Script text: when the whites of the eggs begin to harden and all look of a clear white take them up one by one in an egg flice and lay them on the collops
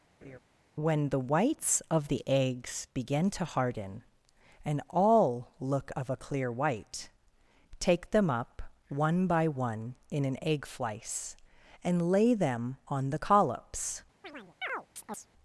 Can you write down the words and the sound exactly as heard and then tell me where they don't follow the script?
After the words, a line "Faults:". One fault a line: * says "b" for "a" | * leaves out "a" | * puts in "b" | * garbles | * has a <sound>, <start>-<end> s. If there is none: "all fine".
when the whites of the eggs begin to harden and all look of a clear white take them up one by one in an egg flice and lay them on the collops
Faults:
* has a laugh, 0.2-0.4 s
* has a chirp, 14.2-15.3 s